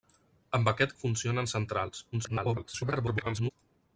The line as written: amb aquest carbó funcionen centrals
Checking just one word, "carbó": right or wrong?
wrong